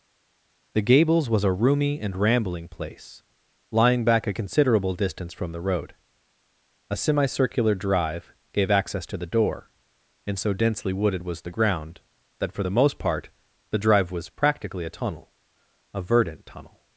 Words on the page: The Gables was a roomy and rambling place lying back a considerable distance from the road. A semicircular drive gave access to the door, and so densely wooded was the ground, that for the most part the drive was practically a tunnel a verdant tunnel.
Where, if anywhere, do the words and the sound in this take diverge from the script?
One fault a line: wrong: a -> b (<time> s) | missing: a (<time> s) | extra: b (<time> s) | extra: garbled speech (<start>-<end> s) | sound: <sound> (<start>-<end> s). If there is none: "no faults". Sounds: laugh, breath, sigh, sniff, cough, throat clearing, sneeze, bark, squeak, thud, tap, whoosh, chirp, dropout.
no faults